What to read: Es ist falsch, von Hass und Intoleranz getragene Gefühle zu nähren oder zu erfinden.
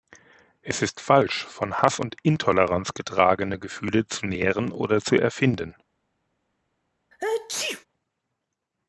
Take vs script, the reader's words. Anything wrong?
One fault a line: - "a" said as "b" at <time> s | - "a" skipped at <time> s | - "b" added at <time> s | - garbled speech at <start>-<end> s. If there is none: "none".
none